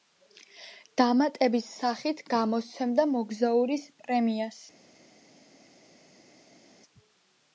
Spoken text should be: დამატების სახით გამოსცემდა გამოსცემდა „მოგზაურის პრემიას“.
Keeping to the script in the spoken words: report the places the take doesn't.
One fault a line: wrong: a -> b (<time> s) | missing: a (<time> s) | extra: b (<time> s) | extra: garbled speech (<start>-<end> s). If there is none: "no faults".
missing: გამოსცემდა (3.1 s)